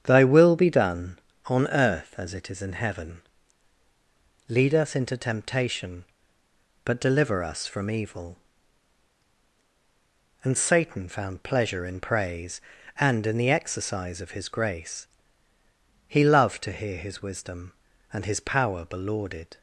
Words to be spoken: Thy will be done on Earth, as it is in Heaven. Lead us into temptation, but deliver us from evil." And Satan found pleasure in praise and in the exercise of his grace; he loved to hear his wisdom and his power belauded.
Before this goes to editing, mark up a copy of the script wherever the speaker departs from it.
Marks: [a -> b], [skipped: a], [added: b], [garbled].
Thy will be done on Earth, as it is in Heaven. Lead us into temptation, but deliver us from evil." And Satan found pleasure in praise and in the exercise of his grace; he loved to hear his wisdom and his power belauded.